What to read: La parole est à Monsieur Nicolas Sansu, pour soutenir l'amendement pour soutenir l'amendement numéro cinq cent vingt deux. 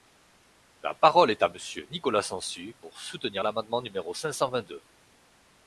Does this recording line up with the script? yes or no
no